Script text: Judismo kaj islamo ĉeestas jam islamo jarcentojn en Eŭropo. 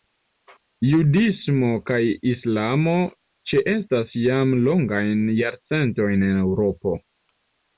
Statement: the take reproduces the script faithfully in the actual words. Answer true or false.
false